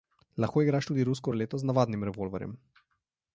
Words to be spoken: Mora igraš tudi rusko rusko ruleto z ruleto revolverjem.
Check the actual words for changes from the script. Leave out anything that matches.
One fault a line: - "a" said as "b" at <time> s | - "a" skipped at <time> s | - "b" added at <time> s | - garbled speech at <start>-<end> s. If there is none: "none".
- "Mora" said as "Lahko" at 0.4 s
- "rusko" skipped at 1.3 s
- "ruleto" said as "navadnim" at 1.7 s